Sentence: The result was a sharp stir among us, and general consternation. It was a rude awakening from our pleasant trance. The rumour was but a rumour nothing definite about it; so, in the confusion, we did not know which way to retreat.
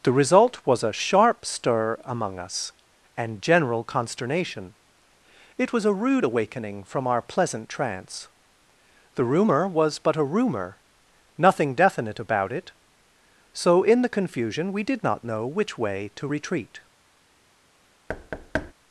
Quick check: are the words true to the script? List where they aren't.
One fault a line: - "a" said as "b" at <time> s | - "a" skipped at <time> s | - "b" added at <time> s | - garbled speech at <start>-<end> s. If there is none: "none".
none